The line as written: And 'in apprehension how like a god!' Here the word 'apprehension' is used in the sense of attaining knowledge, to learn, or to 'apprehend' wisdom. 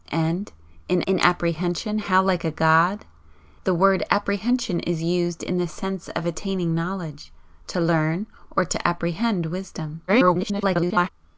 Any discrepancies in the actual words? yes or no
yes